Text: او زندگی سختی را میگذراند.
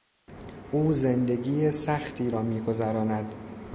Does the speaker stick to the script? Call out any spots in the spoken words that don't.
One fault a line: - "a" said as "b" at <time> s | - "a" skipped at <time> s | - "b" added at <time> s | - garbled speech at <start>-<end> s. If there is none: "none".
none